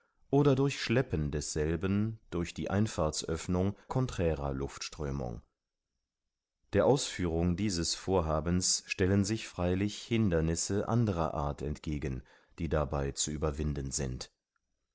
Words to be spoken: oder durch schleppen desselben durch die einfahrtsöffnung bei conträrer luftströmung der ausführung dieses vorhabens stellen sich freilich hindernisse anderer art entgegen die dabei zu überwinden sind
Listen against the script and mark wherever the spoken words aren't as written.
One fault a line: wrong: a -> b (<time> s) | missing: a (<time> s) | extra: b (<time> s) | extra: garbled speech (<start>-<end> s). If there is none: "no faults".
missing: bei (3.8 s)